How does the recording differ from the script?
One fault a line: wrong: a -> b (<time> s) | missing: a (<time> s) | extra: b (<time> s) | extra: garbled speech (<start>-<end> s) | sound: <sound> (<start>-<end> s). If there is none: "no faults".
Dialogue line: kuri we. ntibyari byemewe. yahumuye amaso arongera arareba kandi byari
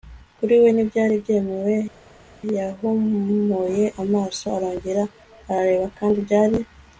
no faults